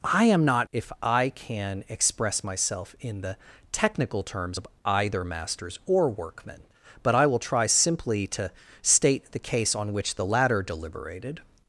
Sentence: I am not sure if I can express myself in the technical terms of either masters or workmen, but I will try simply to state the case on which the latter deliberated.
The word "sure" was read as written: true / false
false